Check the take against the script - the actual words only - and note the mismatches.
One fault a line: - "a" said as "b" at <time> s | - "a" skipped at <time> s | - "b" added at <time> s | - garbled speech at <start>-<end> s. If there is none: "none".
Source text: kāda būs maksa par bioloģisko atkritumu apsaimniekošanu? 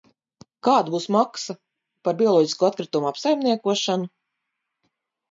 none